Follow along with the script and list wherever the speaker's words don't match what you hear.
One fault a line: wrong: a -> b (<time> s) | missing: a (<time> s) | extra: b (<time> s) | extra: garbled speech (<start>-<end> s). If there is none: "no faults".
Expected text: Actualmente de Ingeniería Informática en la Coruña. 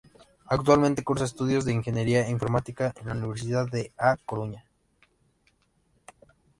extra: cursa estudios (1.0 s)
extra: Universidad de A (3.1 s)